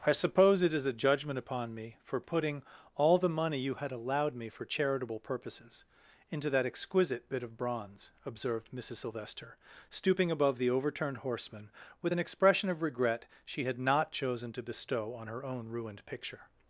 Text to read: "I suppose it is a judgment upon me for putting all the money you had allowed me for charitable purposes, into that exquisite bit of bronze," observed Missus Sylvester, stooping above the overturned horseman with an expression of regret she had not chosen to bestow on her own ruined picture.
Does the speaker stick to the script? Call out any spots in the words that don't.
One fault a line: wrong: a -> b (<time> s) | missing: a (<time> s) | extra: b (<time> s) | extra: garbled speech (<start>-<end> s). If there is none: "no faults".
no faults